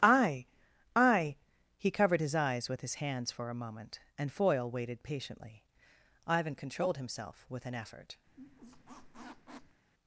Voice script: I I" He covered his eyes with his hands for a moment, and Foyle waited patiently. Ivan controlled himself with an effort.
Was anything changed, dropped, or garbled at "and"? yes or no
no